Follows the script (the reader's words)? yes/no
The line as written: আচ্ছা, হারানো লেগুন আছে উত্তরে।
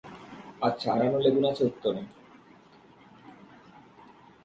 yes